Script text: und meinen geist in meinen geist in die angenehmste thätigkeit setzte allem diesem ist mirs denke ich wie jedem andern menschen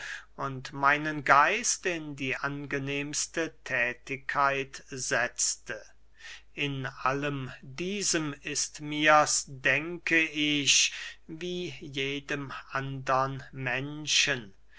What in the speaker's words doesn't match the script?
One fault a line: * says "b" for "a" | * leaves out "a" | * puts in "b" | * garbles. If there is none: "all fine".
* leaves out "meinen geist in"
* puts in "in"